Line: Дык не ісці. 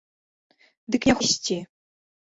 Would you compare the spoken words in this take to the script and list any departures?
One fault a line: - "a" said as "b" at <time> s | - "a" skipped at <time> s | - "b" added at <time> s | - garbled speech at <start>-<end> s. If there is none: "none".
none